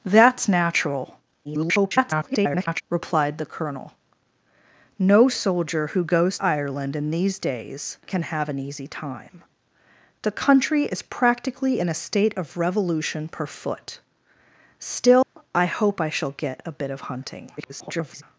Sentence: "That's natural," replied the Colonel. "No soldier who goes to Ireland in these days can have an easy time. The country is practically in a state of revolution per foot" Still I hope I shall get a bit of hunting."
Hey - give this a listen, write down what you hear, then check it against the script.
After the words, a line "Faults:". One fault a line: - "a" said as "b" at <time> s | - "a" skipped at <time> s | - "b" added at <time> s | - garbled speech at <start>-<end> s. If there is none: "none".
"That's natural," [garbled] replied the Colonel. "No soldier who goes Ireland in these days can have an easy time. The country is practically in a state of revolution per foot" Still I hope I shall get a bit of hunting." [garbled]
Faults:
- garbled speech at 1.4-2.8 s
- "to" skipped at 6.4 s
- garbled speech at 17.6-18.2 s